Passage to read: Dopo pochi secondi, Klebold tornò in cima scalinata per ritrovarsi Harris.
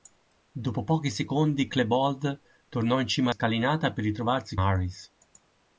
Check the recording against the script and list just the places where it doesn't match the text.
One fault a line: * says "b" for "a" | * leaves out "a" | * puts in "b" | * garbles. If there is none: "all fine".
all fine